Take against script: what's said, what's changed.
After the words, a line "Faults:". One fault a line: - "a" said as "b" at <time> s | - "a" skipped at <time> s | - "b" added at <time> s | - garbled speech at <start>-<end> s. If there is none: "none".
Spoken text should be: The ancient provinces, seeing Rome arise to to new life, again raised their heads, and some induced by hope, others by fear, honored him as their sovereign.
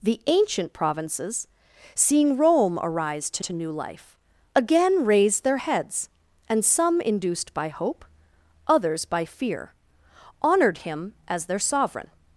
The ancient provinces, seeing Rome arise to to new life, again raised their heads, and some induced by hope, others by fear, honored him as their sovereign.
Faults:
none